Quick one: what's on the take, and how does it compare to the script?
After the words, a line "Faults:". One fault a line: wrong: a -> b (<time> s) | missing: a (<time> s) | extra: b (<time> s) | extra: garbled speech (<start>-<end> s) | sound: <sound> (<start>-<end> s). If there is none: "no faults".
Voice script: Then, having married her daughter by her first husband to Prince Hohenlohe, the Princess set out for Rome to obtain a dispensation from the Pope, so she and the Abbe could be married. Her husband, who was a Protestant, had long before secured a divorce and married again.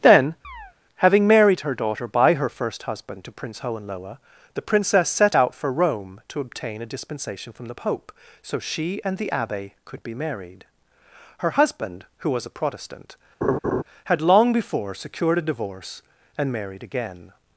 Then, having married her daughter by her first husband to Prince Hohenlohe, the Princess set out for Rome to obtain a dispensation from the Pope, so she and the Abbe could be married. Her husband, who was a Protestant, had long before secured a divorce and married again.
Faults:
sound: chirp (0.4-0.7 s)
sound: laugh (13.4-13.8 s)